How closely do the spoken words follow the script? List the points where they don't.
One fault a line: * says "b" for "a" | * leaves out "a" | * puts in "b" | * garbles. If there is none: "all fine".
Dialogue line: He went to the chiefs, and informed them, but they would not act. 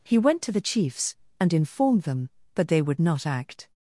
all fine